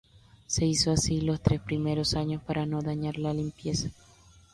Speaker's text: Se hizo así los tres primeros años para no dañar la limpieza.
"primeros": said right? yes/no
yes